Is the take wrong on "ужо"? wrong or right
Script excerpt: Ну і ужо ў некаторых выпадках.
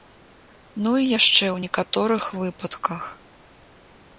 wrong